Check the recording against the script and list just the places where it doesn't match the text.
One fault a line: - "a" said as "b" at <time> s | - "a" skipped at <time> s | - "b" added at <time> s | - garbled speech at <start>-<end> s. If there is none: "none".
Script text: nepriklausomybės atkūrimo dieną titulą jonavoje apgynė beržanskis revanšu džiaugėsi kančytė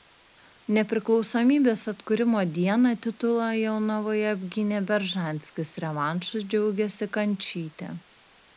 none